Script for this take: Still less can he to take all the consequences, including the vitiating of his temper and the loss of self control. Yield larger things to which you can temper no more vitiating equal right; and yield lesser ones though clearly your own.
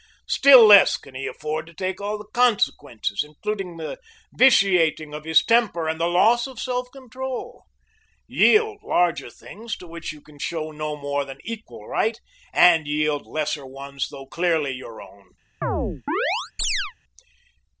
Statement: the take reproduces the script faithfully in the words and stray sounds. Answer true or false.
false